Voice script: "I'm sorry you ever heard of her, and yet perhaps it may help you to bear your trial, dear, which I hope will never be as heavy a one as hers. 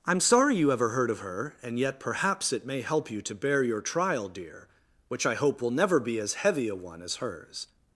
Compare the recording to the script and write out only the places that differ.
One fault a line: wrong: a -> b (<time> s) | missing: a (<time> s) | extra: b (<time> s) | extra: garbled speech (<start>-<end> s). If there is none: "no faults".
no faults